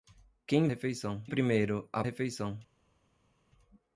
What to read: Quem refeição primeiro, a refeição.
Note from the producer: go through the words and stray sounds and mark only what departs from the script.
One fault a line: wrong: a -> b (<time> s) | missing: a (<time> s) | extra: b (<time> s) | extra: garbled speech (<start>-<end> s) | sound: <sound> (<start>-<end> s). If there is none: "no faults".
no faults